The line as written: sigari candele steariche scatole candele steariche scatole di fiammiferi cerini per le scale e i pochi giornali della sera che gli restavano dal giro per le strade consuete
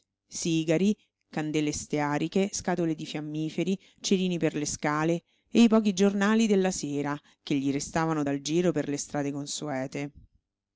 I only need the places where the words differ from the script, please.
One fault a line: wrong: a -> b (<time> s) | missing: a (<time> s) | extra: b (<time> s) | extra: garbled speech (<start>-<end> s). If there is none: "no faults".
missing: candele steariche scatole (2.9 s)